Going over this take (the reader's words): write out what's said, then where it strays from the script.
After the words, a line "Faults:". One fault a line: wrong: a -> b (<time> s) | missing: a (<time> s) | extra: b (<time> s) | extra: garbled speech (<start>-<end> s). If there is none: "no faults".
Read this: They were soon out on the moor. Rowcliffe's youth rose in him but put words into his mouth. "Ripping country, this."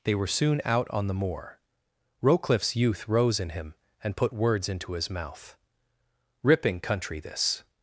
They were soon out on the moor. Rowcliffe's youth rose in him and put words into his mouth. "Ripping country, this."
Faults:
wrong: but -> and (4.0 s)